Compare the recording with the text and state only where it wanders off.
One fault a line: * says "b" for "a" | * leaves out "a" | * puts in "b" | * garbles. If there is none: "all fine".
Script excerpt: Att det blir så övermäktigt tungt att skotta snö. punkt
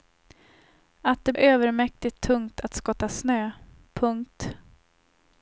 * leaves out "blir så"